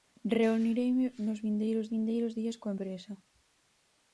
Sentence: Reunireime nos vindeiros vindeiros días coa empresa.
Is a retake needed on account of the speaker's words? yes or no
no